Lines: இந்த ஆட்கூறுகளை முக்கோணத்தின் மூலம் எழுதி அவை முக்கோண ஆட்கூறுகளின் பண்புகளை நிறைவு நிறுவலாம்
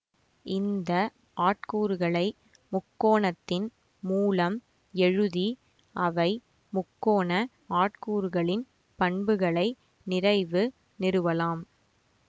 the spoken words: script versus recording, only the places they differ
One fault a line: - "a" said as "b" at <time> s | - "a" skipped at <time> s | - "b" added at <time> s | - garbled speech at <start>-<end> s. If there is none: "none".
none